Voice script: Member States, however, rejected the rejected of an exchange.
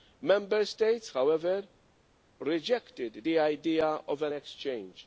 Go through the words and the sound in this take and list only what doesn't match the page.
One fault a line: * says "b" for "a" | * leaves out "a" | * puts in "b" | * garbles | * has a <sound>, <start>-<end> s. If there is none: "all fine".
* says "idea" for "rejected"